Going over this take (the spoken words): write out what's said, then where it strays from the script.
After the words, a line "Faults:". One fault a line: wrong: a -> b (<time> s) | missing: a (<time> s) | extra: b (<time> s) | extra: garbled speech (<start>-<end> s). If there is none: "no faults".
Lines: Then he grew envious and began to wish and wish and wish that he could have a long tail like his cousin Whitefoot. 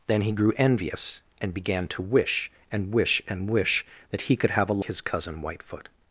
Then he grew envious and began to wish and wish and wish that he could have a his cousin Whitefoot.
Faults:
missing: long tail like (4.8 s)